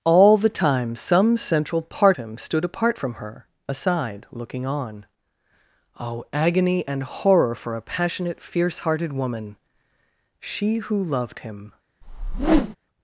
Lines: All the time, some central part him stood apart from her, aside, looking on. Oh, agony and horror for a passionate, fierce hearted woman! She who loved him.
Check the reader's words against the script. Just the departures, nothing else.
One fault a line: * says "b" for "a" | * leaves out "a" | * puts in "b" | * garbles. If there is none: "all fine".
all fine